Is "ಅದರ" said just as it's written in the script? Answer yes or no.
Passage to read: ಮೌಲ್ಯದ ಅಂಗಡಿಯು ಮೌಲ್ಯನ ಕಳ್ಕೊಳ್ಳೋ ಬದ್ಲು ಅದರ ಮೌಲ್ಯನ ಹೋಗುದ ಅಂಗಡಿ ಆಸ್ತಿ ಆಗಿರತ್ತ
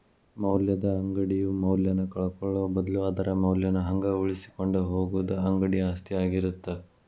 yes